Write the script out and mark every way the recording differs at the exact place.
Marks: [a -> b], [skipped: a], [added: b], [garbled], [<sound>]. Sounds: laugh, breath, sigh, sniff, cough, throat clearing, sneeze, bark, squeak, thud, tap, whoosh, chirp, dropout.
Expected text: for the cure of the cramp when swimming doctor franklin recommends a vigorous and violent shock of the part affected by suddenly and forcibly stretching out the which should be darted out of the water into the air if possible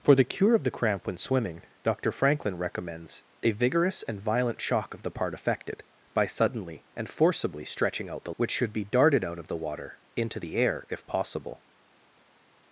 for the cure of the cramp when swimming doctor franklin recommends a vigorous and violent shock of the part affected by suddenly and forcibly stretching out the which should be darted out of the water into the air if possible